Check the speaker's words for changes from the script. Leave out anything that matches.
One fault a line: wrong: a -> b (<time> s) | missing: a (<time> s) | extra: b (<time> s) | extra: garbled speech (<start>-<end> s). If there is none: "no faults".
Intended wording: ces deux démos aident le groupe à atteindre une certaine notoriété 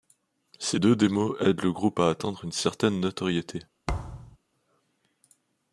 no faults